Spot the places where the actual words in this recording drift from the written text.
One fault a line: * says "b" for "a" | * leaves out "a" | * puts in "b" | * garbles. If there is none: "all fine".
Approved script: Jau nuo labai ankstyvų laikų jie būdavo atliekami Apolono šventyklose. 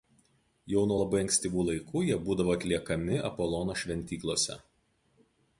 all fine